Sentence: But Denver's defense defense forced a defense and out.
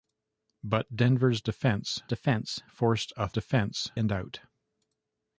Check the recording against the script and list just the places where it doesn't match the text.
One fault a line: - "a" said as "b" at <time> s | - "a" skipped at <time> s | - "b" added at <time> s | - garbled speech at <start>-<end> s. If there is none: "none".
none